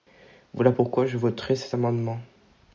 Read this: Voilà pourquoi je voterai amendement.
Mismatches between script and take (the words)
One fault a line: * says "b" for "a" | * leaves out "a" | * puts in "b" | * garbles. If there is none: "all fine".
* puts in "cet"